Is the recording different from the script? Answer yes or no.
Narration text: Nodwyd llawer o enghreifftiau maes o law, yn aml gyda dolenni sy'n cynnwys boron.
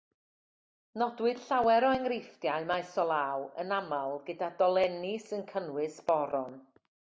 no